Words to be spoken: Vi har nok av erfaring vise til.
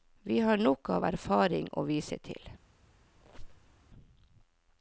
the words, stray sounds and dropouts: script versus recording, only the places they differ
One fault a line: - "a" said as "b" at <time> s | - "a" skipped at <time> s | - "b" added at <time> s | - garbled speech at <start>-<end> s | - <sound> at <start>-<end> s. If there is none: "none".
- "å" added at 1.7 s
- squeak at 3.2-3.8 s